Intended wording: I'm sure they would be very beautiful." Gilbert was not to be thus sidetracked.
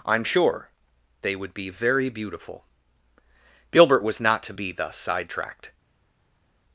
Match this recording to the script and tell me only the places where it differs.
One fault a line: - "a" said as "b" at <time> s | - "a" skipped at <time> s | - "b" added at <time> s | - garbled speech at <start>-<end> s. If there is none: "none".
none